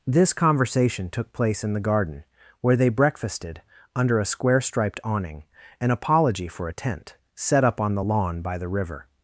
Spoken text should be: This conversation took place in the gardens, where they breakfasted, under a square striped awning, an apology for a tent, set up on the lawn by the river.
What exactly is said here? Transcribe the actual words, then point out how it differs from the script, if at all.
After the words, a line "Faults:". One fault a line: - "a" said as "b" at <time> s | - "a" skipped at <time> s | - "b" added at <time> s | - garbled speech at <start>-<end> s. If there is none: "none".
This conversation took place in the garden, where they breakfasted, under a square striped awning, an apology for a tent, set up on the lawn by the river.
Faults:
- "gardens" said as "garden" at 1.8 s